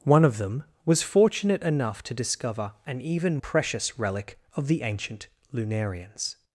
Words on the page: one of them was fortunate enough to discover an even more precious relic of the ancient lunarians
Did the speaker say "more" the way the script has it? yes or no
no